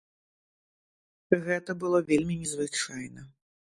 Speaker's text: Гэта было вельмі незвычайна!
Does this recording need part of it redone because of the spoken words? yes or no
no